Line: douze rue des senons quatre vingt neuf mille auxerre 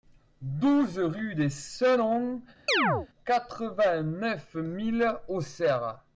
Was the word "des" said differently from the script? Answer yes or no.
no